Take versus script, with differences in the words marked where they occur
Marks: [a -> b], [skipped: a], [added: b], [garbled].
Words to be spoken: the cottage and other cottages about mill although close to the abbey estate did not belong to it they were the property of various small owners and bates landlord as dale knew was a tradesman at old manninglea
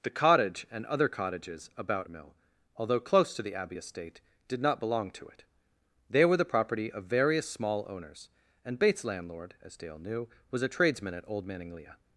the cottage and other cottages about mill although close to the abbey estate did not belong to it they were the property of various small owners and bates landlord as dale knew was a tradesman at old manninglea